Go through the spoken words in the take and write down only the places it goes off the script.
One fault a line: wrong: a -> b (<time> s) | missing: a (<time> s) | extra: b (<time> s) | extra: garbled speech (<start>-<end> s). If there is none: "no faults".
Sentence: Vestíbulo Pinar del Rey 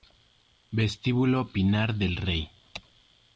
no faults